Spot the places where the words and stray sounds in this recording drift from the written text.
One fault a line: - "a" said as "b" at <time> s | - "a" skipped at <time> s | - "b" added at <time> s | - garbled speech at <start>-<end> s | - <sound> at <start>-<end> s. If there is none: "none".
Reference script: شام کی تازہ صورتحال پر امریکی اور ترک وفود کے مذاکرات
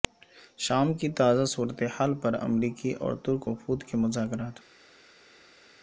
none